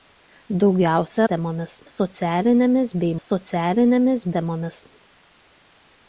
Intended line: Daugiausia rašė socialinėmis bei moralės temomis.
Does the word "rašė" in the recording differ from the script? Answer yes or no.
yes